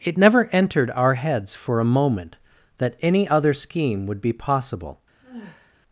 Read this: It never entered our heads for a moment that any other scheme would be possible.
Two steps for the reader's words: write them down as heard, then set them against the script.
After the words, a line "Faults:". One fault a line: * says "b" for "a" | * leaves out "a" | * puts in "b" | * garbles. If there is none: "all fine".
It never entered our heads for a moment that any other scheme would be possible.
Faults:
all fine